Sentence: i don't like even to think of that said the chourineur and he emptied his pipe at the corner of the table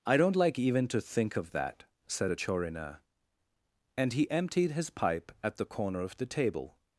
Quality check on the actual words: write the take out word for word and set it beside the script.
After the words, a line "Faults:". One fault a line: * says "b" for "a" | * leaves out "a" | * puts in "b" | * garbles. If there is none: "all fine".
i don't like even to think of that said a chourineur and he emptied his pipe at the corner of the table
Faults:
* says "a" for "the"